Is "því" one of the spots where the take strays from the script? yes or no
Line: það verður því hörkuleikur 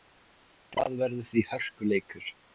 no